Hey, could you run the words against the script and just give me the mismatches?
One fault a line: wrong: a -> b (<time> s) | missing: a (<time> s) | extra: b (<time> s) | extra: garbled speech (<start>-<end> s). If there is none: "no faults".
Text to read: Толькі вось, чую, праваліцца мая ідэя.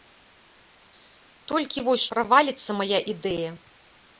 missing: чую (2.1 s)